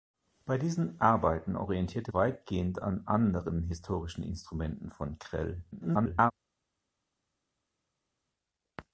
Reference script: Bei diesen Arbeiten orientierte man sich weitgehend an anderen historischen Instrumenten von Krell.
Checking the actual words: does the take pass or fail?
fail